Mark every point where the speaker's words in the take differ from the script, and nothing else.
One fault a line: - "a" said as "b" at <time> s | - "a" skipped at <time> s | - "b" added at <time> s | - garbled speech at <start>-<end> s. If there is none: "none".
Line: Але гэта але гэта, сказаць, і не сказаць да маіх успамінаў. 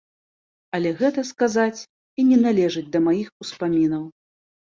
- "але гэта" skipped at 1.2 s
- "сказаць" said as "належыць" at 2.4 s